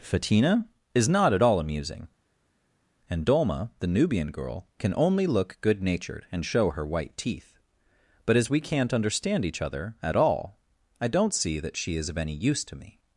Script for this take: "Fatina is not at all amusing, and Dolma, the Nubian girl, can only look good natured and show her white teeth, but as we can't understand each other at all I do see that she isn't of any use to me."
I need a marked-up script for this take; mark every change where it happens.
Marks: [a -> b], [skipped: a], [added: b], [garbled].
"Fatina is not at all amusing, and Dolma, the Nubian girl, can only look good natured and show her white teeth, but as we can't understand each other at all I [do -> don't] see that she [isn't -> is] of any use to me."